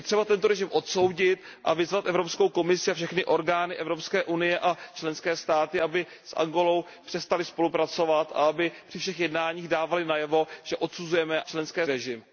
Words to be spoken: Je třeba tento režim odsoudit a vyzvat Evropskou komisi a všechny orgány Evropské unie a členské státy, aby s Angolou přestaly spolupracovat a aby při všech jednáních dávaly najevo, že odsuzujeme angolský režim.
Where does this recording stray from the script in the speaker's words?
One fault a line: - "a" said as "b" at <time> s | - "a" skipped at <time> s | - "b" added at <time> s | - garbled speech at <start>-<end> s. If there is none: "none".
- "angolský" said as "členské" at 11.5 s